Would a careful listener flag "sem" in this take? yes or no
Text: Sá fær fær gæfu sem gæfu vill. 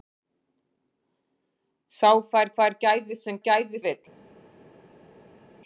no